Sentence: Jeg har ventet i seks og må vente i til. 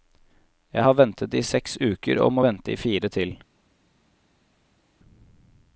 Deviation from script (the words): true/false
true